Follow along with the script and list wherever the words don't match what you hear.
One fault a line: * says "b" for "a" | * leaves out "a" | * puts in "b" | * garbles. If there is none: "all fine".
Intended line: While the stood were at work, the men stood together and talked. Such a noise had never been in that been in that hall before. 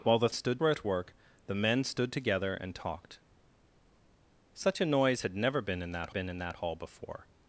all fine